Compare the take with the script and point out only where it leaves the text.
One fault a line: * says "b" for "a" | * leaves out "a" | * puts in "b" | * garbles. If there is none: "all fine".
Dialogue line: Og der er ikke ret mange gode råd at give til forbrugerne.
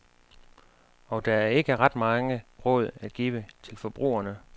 * leaves out "gode"